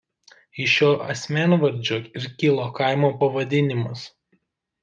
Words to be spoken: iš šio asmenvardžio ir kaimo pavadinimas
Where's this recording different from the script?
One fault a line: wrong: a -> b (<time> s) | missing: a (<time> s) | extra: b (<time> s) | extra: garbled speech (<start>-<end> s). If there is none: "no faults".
extra: kilo (2.4 s)